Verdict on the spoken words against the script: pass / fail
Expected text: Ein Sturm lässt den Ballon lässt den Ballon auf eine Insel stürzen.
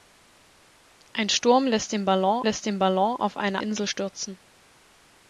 pass